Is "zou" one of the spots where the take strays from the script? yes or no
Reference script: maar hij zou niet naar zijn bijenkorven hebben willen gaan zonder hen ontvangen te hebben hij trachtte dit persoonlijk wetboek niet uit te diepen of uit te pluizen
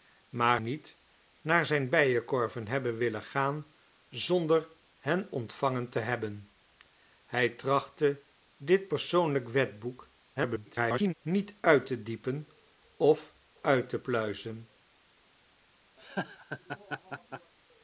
yes